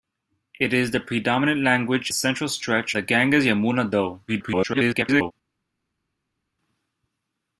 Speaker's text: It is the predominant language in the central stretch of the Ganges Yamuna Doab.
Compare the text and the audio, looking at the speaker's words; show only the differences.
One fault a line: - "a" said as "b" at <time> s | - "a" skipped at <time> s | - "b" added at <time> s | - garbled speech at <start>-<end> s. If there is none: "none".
- "in the" skipped at 2.1 s
- "of" skipped at 2.9 s
- garbled speech at 4.3-5.3 s